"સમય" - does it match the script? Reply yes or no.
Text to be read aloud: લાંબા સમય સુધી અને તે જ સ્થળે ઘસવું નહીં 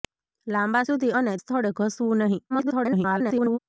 no